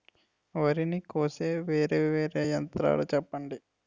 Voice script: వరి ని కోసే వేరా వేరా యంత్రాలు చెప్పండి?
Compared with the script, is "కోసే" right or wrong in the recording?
right